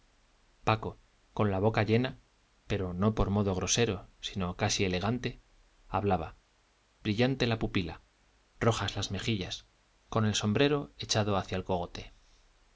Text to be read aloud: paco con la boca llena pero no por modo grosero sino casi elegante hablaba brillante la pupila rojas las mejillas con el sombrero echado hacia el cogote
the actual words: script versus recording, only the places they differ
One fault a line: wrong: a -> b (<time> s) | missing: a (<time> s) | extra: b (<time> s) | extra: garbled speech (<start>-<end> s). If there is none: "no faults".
no faults